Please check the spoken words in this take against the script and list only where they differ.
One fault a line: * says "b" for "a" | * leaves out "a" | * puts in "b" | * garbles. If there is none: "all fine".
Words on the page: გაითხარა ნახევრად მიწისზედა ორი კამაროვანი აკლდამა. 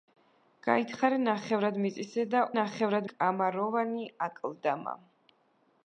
* says "ნახევრად" for "ორი"